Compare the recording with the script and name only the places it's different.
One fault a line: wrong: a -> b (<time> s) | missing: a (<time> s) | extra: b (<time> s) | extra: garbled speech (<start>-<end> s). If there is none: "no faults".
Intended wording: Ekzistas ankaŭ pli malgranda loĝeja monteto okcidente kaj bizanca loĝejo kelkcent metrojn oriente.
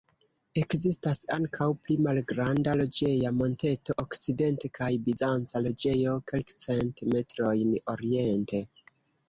no faults